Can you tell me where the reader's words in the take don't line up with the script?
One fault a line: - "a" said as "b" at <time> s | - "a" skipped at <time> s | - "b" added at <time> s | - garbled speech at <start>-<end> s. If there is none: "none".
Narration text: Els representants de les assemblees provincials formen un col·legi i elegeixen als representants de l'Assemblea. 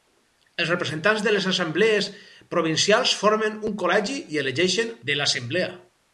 - "als representants" skipped at 4.9 s